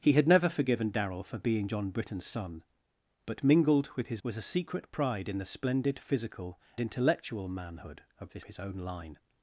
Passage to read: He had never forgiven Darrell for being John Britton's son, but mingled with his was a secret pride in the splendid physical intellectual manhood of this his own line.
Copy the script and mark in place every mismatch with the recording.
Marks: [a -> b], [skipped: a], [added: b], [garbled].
He had never forgiven Darrell for being John Britton's son, but mingled with his was a secret pride in the splendid physical intellectual manhood of this his own line.